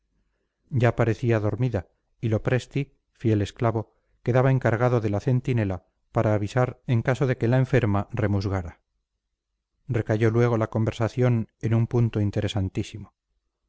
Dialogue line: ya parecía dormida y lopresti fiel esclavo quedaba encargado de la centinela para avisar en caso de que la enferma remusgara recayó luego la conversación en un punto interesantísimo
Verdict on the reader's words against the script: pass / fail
pass